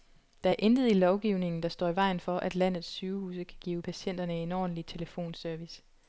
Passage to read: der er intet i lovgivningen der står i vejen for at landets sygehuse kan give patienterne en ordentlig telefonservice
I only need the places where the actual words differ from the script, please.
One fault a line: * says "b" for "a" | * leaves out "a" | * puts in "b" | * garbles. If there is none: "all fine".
all fine